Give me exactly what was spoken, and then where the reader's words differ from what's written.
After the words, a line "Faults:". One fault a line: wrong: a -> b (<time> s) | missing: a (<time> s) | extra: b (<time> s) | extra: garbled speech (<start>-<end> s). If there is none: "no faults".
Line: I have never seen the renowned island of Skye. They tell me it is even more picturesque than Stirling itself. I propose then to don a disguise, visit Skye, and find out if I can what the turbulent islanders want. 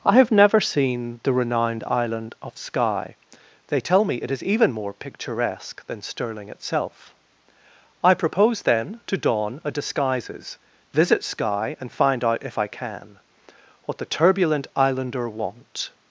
I have never seen the renowned island of Skye. They tell me it is even more picturesque than Stirling itself. I propose then to don a disguises, visit Skye, and find out if I can what the turbulent islander want.
Faults:
wrong: disguise -> disguises (9.7 s)
wrong: islanders -> islander (14.8 s)